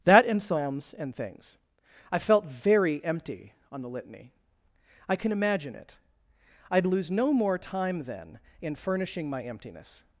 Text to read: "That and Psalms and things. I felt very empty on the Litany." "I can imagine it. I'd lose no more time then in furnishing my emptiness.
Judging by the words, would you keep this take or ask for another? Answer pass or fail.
pass